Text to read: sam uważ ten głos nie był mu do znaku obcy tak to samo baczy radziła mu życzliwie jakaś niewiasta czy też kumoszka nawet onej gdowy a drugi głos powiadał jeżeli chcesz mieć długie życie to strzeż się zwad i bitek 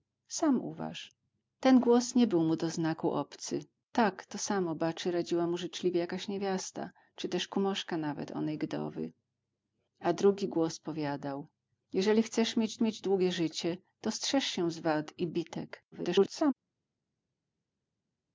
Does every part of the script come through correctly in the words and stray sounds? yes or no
no